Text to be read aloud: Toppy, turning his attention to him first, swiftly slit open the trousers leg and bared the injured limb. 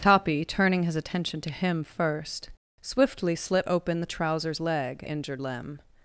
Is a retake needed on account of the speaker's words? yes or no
yes